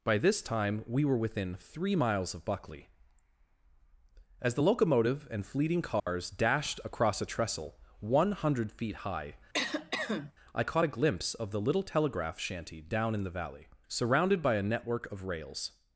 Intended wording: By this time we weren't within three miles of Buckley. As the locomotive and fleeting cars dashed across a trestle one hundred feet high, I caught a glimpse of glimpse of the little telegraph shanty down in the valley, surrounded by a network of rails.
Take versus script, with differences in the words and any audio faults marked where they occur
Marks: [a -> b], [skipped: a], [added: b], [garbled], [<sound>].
By this time we [weren't -> were] within three miles of Buckley. As the locomotive and fleeting cars [dropout] dashed across a trestle one hundred feet high, [cough] I caught a glimpse of [skipped: glimpse of] the little telegraph shanty down in the valley, surrounded by a network of rails.